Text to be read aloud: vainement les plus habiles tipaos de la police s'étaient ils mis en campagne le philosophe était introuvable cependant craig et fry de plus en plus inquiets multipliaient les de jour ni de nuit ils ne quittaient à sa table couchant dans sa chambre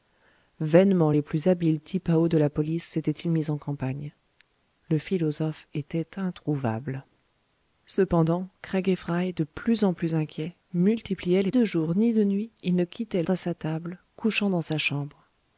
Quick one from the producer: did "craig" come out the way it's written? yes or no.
yes